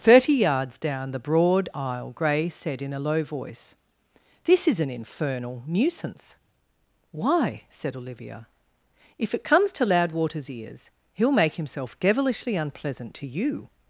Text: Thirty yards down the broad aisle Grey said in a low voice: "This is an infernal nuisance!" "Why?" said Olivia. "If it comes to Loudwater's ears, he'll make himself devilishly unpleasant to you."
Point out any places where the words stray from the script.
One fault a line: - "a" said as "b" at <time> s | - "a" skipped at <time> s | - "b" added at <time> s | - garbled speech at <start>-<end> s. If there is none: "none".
none